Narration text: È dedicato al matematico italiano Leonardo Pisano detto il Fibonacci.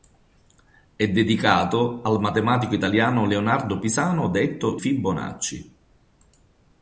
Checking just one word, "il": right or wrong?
wrong